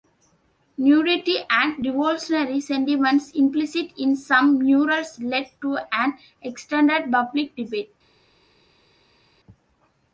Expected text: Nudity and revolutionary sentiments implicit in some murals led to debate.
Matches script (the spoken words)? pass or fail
fail